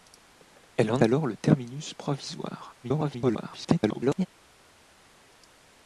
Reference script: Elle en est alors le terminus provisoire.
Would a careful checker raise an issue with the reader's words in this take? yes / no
yes